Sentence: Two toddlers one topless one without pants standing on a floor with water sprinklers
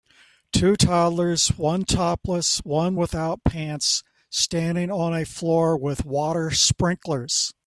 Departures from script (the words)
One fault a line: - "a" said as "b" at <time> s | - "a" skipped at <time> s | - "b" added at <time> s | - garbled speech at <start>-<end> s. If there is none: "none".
none